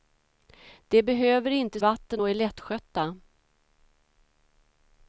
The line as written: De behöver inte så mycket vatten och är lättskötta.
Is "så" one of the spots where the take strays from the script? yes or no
yes